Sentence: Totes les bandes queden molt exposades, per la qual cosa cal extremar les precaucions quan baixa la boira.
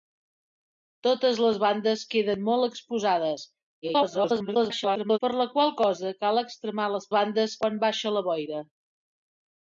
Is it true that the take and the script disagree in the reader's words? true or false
true